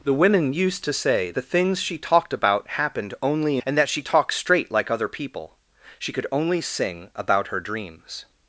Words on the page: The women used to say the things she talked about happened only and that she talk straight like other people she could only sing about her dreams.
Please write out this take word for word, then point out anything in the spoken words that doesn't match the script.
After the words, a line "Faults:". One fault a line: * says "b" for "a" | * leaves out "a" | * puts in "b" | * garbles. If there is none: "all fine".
The women used to say the things she talked about happened only and that she talk straight like other people she could only sing about her dreams.
Faults:
all fine